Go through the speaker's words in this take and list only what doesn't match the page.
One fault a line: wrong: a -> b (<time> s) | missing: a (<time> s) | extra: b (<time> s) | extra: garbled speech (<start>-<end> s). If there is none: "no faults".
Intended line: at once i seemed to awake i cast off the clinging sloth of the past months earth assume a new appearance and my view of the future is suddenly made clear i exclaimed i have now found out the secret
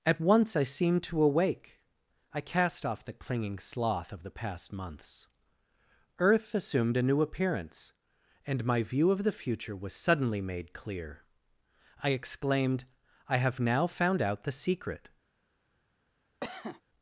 wrong: assume -> assumed (6.5 s)
wrong: is -> was (9.8 s)